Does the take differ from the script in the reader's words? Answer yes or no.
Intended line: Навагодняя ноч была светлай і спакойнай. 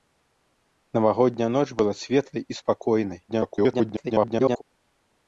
yes